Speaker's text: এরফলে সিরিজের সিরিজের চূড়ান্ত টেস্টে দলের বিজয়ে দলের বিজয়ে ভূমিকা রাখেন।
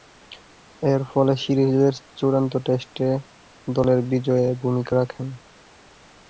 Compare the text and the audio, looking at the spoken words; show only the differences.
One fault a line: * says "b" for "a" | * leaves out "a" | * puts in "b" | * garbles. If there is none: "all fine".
* leaves out "সিরিজের"
* leaves out "দলের বিজয়ে"